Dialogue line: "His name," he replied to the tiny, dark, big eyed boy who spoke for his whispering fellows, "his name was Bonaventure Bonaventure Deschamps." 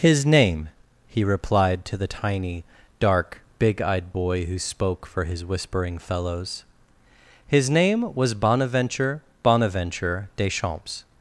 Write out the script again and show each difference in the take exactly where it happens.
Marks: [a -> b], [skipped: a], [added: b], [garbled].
"His name," he replied to the tiny, dark, big eyed boy who spoke for his whispering fellows, "his name was Bonaventure Bonaventure Deschamps."